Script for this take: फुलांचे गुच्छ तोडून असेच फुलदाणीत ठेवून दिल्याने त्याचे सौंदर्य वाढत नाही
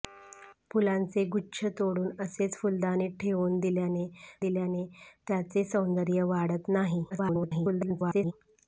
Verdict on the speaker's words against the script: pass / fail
fail